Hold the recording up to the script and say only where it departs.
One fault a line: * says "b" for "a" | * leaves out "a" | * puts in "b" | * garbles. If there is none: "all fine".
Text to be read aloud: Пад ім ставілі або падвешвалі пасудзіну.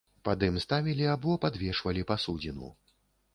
all fine